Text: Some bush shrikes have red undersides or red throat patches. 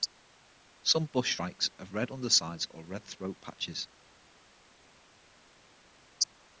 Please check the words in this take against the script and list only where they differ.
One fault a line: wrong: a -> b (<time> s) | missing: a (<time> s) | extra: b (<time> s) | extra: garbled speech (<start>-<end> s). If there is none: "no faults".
no faults